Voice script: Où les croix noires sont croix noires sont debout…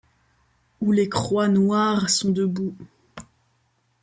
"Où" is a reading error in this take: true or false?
false